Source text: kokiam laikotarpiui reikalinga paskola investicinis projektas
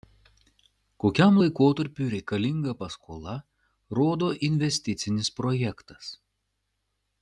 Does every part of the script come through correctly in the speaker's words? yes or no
no